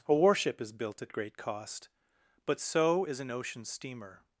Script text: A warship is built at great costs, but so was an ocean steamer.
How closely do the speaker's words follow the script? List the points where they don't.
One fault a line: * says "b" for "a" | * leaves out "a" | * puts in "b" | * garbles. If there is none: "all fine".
* says "cost" for "costs"
* says "is" for "was"